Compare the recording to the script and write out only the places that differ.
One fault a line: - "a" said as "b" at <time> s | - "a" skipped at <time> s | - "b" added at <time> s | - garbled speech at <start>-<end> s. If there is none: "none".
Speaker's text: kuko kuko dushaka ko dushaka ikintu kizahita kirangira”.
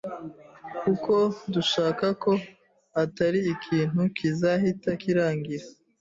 - "kuko" skipped at 1.1 s
- "dushaka" said as "atari" at 3.0 s